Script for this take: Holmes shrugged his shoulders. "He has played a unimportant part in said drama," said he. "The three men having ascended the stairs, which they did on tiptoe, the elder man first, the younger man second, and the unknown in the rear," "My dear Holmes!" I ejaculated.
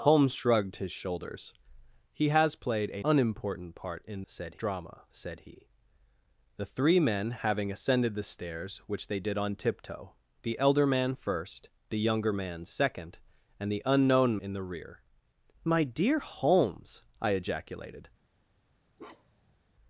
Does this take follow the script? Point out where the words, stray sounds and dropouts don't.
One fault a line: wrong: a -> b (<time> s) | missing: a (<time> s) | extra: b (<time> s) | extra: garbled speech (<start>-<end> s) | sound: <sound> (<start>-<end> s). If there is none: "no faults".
sound: bark (19.0-19.6 s)